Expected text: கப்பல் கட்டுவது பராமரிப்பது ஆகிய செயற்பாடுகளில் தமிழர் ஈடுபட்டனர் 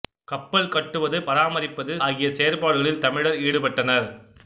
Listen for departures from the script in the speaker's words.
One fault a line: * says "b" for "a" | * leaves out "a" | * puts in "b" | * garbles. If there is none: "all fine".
all fine